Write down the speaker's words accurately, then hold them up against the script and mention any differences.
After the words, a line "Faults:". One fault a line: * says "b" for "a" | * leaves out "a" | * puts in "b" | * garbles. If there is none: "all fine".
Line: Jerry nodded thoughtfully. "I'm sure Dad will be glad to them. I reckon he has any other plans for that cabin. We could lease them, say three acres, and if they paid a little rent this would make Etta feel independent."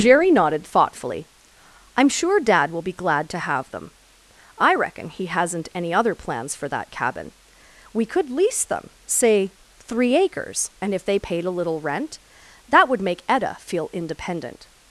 Jerry nodded thoughtfully. "I'm sure Dad will be glad to have them. I reckon he hasn't any other plans for that cabin. We could lease them, say three acres, and if they paid a little rent that would make Etta feel independent."
Faults:
* puts in "have"
* says "hasn't" for "has"
* says "that" for "this"